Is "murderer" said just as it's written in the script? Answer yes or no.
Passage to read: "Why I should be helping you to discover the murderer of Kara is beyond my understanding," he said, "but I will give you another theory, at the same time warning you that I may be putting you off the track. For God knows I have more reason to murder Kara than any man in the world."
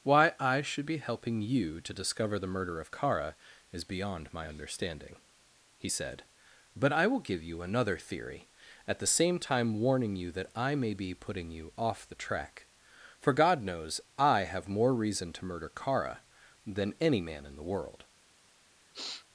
no